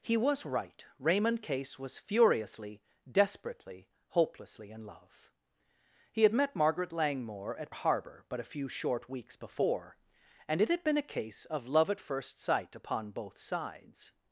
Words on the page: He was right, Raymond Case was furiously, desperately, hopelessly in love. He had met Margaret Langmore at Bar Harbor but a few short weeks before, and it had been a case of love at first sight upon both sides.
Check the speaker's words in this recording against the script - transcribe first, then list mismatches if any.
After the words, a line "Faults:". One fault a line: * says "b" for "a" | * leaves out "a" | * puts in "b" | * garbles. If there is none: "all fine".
He was right, Raymond Case was furiously, desperately, hopelessly in love. He had met Margaret Langmore at Harbor but a few short weeks before, and it had been a case of love at first sight upon both sides.
Faults:
* leaves out "Bar"